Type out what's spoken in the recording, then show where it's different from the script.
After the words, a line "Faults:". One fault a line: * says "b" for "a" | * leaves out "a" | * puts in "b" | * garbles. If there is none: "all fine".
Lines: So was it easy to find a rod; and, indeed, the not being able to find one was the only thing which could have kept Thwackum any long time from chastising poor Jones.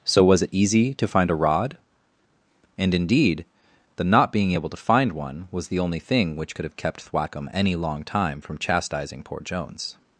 So was it easy to find a rod; and, indeed, the not being able to find one was the only thing which could have kept Thwackum any long time from chastising poor Jones.
Faults:
all fine